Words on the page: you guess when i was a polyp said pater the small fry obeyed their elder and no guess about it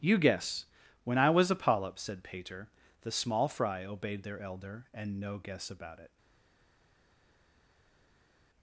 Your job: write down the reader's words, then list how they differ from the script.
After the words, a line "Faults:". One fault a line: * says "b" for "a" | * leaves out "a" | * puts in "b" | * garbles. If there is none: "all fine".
you guess when i was a polyp said pater the small fry obeyed their elder and no guess about it
Faults:
all fine